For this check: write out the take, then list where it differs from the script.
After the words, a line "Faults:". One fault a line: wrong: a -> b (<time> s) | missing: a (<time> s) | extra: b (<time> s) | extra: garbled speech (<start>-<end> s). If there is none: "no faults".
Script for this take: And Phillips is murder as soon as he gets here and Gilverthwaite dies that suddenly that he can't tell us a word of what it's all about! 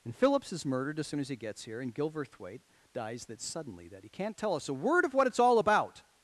And Phillips is murdered as soon as he gets here and Gilverthwaite dies that suddenly that he can't tell us a word of what it's all about!
Faults:
wrong: murder -> murdered (0.7 s)